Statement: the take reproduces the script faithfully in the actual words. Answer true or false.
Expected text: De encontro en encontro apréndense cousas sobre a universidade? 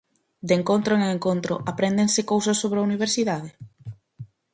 true